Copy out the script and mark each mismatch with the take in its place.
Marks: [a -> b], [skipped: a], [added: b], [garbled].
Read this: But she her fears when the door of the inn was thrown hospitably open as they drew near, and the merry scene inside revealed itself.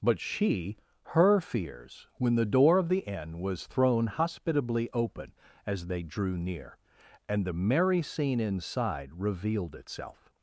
But she her fears when the door of the inn was thrown hospitably open as they drew near, and the merry scene inside revealed itself.